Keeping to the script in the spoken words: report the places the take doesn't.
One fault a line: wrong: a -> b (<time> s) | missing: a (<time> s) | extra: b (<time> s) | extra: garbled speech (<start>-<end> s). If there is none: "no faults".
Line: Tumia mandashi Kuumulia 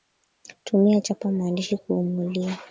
extra: chapa (1.0 s)